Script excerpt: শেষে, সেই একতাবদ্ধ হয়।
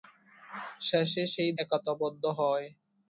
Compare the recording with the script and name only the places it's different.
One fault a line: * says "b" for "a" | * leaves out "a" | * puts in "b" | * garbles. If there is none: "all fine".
all fine